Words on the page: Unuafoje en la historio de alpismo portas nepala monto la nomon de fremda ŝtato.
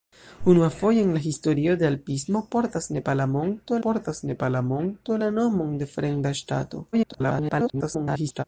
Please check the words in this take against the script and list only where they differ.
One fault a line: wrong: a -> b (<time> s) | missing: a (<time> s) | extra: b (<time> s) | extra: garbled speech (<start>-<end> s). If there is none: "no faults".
extra: portas nepala monto (3.9 s)
extra: garbled speech (6.9-8.4 s)